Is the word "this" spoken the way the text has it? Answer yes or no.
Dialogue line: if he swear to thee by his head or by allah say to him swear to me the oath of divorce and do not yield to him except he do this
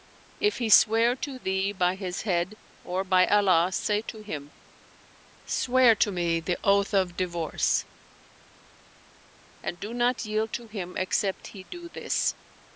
yes